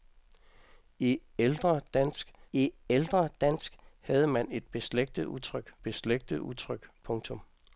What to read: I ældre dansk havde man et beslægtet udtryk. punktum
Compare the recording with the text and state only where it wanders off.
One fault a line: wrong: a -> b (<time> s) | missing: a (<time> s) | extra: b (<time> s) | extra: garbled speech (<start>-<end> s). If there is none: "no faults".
extra: I ældre dansk (2.5 s)
extra: beslægtet udtryk (5.8 s)